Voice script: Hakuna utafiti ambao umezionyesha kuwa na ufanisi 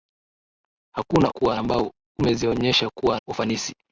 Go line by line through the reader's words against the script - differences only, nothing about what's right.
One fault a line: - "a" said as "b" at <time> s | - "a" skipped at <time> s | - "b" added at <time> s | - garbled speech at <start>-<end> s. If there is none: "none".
- "utafiti" said as "kuwa" at 1.3 s
- "na" skipped at 3.2 s